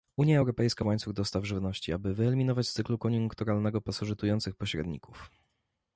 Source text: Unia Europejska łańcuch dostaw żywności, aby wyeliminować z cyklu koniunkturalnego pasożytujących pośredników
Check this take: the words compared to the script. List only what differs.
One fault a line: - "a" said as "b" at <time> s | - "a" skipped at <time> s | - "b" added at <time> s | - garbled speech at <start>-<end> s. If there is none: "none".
none